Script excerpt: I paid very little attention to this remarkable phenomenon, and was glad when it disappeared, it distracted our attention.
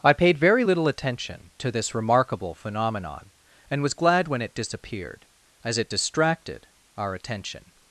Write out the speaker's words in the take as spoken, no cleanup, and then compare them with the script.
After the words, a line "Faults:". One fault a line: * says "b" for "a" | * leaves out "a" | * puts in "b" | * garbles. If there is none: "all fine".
I paid very little attention to this remarkable phenomenon, and was glad when it disappeared, as it distracted our attention.
Faults:
* puts in "as"